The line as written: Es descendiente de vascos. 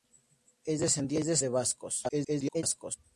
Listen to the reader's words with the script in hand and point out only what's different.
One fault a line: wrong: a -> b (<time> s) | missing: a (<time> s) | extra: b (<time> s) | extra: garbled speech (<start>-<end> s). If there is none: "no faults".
extra: garbled speech (2.1-2.6 s)